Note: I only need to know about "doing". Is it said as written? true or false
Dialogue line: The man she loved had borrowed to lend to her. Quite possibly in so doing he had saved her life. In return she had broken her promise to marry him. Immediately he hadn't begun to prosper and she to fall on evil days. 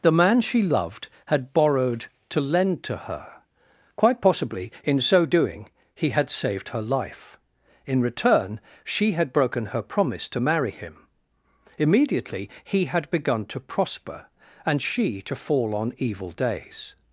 true